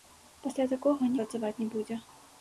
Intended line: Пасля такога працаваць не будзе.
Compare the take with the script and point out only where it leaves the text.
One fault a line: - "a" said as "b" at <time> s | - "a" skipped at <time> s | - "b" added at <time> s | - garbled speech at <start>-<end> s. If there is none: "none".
none